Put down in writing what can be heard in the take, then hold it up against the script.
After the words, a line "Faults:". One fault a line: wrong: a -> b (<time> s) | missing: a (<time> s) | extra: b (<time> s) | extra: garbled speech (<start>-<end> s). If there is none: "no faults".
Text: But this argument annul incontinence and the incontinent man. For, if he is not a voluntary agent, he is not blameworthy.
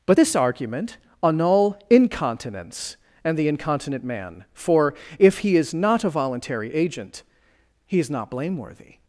But this argument annul incontinence and the incontinent man. For, if he is not a voluntary agent, he is not blameworthy.
Faults:
no faults